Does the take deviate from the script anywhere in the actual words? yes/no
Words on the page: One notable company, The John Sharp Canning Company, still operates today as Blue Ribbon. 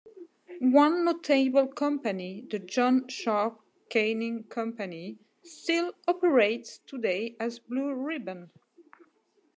no